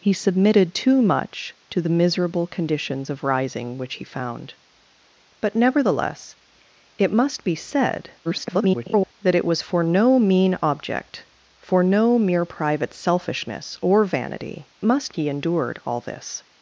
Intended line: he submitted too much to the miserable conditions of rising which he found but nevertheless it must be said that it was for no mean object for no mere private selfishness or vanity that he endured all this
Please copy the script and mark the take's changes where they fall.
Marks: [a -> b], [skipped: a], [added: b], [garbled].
he submitted too much to the miserable conditions of rising which he found but nevertheless it must be said [garbled] that it was for no mean object for no mere private selfishness or vanity [that -> must] he endured all this